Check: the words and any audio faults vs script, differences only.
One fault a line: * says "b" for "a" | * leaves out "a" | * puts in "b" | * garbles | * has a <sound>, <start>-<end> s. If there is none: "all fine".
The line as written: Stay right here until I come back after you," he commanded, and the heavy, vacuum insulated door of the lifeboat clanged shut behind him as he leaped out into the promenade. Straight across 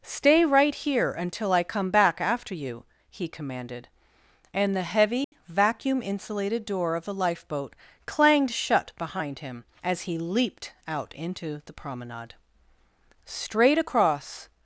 * has a dropout, 5.2-5.3 s